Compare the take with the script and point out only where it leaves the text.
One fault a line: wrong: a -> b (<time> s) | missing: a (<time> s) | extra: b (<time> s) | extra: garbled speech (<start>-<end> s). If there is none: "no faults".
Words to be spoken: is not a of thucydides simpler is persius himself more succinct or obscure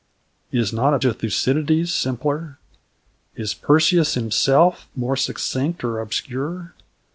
no faults